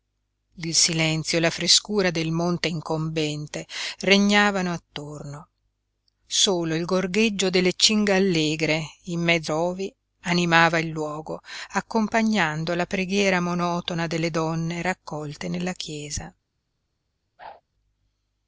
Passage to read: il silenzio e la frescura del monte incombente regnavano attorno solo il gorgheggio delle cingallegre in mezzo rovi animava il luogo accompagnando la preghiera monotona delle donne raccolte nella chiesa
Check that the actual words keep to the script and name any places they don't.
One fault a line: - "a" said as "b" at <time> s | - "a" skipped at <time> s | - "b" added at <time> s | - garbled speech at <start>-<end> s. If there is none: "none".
none